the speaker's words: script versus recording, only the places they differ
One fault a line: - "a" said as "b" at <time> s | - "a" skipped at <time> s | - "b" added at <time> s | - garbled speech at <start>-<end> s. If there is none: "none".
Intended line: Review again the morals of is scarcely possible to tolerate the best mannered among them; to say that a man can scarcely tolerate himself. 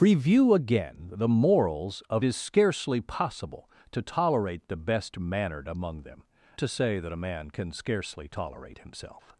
none